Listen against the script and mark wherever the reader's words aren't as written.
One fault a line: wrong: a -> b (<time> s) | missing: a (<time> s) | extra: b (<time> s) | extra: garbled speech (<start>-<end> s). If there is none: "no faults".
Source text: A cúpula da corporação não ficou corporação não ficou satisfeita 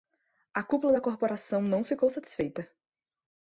missing: corporação não ficou (2.1 s)